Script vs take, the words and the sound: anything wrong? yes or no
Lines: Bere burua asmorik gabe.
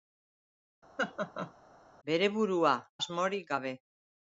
yes